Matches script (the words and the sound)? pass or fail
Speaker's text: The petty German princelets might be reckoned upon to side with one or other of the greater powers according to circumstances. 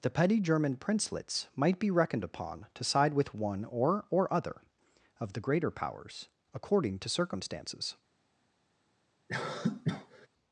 fail